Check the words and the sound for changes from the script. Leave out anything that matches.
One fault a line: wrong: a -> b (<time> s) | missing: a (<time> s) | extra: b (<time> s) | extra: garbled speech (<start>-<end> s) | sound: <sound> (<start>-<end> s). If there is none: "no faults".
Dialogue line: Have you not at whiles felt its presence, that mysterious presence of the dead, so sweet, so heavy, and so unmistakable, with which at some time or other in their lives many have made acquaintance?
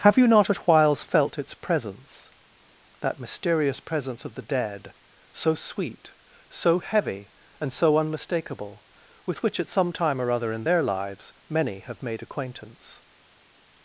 no faults